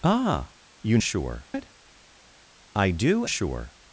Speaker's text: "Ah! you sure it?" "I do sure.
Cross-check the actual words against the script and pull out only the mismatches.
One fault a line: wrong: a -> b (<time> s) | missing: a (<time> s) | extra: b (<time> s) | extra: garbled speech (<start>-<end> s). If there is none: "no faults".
no faults